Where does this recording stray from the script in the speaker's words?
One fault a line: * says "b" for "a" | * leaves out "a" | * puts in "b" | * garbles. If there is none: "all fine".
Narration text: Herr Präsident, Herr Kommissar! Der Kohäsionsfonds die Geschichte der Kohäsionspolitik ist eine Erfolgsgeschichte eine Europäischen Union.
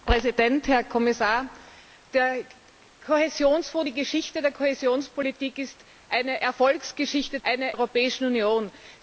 all fine